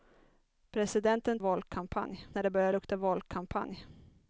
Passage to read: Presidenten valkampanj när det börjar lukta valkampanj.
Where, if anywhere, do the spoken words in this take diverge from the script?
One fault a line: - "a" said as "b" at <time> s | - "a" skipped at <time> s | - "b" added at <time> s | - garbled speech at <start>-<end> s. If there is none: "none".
none